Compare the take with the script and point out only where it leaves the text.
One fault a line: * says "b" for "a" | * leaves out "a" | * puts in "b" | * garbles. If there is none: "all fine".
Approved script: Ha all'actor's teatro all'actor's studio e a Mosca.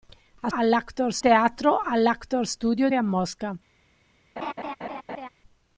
all fine